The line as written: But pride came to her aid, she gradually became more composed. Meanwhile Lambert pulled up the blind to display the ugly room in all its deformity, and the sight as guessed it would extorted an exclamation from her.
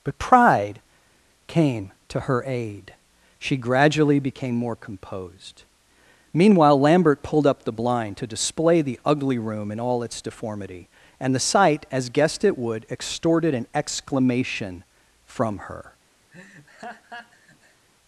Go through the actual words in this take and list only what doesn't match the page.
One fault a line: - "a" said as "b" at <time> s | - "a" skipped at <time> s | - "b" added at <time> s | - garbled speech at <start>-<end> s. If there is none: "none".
none